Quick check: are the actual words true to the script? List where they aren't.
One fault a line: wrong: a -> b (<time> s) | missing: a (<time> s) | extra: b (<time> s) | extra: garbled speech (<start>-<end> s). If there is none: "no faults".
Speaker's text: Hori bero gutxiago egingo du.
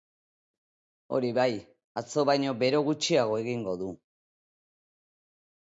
extra: bai atzo baino (1.4 s)